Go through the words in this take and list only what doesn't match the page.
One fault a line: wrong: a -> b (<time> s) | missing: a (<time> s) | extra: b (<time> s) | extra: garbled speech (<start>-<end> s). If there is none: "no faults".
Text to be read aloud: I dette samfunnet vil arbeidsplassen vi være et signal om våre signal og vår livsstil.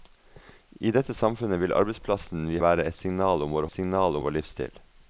no faults